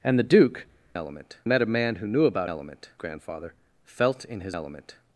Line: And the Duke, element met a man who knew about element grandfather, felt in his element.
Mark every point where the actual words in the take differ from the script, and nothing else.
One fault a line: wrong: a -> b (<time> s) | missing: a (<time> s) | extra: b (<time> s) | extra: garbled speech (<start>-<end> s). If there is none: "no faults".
no faults